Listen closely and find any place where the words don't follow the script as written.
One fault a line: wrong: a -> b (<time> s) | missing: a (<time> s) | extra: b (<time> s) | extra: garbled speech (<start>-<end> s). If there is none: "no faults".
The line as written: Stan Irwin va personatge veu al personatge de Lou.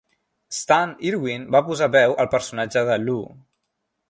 wrong: personatge -> posar (1.7 s)